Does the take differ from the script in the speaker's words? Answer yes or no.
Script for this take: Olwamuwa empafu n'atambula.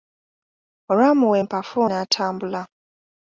no